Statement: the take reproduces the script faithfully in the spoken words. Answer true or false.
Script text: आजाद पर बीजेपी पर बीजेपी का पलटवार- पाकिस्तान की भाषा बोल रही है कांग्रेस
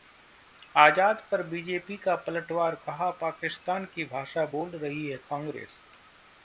false